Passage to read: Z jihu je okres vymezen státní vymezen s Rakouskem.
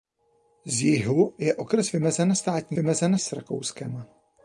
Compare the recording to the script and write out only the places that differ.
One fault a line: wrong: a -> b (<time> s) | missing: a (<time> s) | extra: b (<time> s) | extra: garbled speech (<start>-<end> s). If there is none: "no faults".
no faults